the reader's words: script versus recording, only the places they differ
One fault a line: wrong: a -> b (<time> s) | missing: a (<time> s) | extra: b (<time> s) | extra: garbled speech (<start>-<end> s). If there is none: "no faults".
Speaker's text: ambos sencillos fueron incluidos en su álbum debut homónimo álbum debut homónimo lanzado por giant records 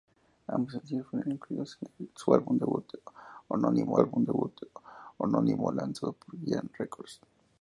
no faults